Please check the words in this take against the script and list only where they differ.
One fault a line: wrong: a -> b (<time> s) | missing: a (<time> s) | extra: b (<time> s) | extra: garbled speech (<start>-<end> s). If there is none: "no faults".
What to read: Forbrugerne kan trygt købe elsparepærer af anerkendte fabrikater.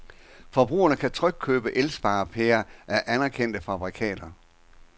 no faults